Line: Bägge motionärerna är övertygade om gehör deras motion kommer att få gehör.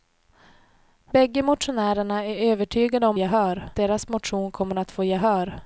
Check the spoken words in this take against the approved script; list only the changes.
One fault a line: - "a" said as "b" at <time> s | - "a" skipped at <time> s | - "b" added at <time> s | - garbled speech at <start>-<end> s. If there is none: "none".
none